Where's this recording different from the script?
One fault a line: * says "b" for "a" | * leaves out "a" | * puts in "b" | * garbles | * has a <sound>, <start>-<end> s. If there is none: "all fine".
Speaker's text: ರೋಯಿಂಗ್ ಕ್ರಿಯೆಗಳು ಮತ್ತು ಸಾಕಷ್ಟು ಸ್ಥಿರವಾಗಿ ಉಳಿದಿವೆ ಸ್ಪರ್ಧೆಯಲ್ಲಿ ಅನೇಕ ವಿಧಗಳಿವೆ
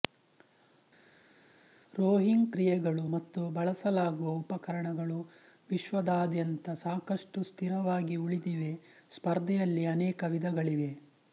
* puts in "ಬಳಸಲಾಗುವ ಉಪಕರಣಗಳು ವಿಶ್ವದಾದ್ಯಂತ"